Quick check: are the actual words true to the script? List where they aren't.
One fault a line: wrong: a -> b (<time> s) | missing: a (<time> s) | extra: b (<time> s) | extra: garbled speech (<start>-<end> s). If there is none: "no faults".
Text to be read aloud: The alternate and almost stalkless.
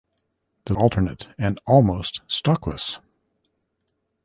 no faults